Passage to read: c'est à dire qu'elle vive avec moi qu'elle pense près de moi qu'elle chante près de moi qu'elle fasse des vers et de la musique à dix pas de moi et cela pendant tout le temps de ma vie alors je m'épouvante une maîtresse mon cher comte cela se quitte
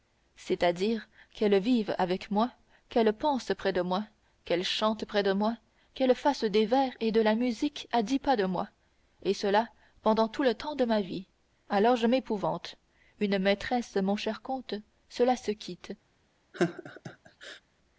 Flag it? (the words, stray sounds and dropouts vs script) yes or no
yes